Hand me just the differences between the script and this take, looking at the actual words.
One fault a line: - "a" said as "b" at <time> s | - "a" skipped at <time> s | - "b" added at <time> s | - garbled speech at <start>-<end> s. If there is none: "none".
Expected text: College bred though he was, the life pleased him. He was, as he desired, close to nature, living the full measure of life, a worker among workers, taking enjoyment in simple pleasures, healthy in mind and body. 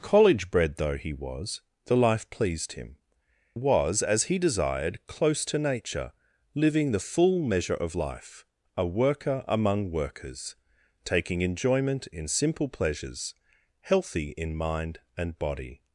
- "He" skipped at 3.0 s